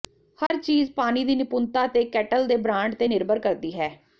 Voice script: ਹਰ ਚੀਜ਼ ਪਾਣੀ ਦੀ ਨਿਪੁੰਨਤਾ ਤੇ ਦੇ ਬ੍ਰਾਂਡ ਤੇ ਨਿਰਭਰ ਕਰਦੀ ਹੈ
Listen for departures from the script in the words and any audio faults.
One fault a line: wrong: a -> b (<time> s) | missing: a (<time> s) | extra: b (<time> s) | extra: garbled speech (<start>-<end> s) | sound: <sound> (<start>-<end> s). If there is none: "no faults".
sound: dropout (0.5-0.5 s)
extra: ਕੇਟਲ (2.0 s)